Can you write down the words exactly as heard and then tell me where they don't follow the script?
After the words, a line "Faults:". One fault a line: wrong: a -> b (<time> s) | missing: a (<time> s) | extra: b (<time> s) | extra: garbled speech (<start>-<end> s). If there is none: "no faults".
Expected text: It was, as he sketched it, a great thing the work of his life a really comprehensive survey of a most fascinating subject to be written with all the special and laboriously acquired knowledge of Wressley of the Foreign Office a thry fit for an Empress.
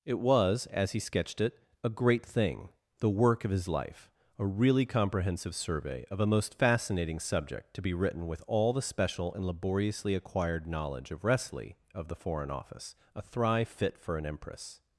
It was, as he sketched it, a great thing the work of his life a really comprehensive survey of a most fascinating subject to be written with all the special and laboriously acquired knowledge of Wressley of the Foreign Office a thry fit for an Empress.
Faults:
no faults